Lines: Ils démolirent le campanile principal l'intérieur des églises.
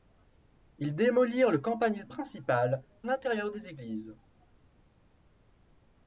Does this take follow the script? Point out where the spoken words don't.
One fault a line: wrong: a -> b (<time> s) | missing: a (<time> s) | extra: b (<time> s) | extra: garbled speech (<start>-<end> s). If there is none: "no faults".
no faults